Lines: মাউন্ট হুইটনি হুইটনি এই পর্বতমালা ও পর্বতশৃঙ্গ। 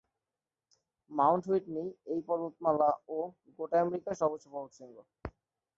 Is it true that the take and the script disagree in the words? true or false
true